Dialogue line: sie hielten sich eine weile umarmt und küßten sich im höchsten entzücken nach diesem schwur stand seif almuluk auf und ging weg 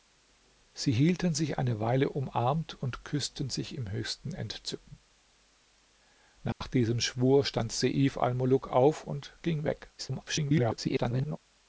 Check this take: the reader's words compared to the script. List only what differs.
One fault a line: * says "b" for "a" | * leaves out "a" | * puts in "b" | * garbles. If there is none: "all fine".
* garbles